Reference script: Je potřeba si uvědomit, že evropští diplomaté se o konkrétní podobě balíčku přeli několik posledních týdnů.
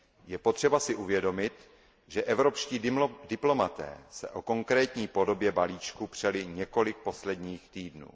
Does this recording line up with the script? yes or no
yes